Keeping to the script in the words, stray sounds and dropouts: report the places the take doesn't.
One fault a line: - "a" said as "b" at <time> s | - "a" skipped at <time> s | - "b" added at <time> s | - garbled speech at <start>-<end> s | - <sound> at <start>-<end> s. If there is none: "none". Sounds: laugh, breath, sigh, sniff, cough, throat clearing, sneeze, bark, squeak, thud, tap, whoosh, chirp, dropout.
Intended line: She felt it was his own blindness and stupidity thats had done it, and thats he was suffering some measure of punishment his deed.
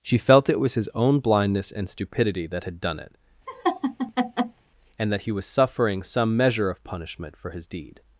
- "thats" said as "that" at 2.5 s
- laugh at 3.5-4.6 s
- "thats" said as "that" at 5.1 s
- "for" added at 7.4 s